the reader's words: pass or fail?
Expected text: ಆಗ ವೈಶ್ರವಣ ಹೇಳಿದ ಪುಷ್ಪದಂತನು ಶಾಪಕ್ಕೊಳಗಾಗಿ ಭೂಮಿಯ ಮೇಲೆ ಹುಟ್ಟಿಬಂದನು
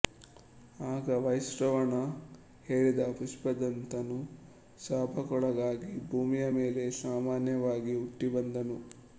fail